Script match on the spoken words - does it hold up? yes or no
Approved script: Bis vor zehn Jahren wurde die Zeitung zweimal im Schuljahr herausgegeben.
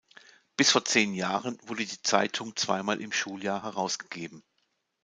yes